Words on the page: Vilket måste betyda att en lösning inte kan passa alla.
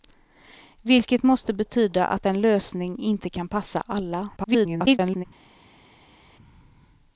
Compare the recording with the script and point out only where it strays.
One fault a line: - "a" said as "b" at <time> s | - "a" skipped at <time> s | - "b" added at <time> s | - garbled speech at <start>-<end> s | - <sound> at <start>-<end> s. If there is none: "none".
- garbled speech at 4.4-5.2 s